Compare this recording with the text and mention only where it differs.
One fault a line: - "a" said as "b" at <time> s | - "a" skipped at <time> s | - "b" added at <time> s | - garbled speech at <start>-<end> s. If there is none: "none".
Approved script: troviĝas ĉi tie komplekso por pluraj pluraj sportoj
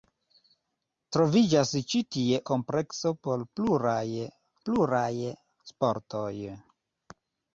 none